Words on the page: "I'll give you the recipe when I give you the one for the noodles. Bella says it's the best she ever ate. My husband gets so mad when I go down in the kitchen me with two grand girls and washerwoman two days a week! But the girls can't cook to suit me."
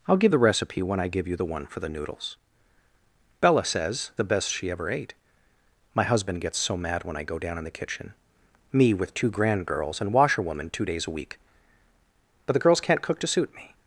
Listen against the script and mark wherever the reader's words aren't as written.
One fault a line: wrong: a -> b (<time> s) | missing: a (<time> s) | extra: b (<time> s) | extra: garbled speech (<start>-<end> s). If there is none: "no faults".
missing: you (0.3 s)
missing: it's (4.1 s)